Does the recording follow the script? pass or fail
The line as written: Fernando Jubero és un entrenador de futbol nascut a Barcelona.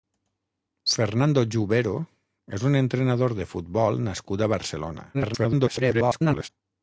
fail